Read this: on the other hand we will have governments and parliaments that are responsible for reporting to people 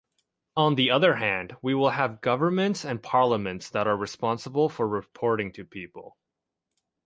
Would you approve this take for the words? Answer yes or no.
yes